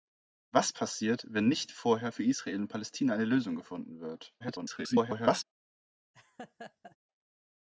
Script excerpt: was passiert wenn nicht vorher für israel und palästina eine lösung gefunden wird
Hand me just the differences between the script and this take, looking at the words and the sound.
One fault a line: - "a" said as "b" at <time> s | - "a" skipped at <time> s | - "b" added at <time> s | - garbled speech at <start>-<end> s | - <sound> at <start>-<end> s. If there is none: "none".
- garbled speech at 4.4-5.4 s
- laugh at 6.1-7.0 s